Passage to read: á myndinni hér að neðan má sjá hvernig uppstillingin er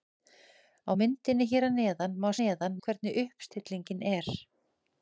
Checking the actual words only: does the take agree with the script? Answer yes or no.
no